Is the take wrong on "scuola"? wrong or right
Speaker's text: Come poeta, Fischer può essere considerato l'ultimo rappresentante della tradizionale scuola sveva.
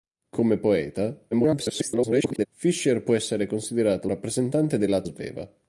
wrong